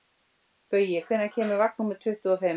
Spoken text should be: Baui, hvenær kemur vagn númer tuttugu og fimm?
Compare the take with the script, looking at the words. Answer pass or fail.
pass